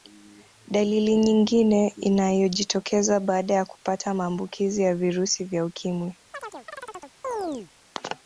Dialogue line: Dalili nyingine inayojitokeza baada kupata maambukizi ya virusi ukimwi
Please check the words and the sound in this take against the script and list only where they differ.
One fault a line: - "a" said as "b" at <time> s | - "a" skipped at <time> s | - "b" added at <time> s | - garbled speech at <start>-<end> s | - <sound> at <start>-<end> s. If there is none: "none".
- "ya" added at 3.5 s
- "vya" added at 5.5 s
- chirp at 6.3-7.7 s